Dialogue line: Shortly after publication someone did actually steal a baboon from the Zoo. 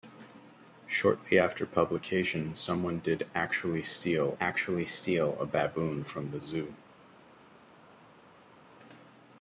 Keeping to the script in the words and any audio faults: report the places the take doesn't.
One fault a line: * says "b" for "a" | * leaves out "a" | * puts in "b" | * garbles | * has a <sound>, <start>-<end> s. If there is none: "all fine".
* puts in "actually steal"